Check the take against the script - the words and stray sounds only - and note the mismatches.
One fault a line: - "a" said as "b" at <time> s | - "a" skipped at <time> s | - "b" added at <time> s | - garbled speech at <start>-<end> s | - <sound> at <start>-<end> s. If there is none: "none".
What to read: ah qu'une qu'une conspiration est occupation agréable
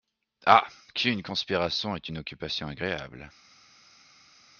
- "qu'une" skipped at 1.2 s
- "une" added at 2.1 s